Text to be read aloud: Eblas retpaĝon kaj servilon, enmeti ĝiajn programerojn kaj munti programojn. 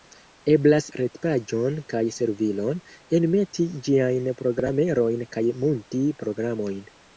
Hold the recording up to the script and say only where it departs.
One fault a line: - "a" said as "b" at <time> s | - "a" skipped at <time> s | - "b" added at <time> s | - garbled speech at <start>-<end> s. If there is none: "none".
none